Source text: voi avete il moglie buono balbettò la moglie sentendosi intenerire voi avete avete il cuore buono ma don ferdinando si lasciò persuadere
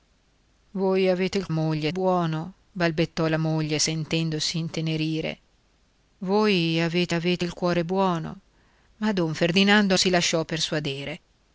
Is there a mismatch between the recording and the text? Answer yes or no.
no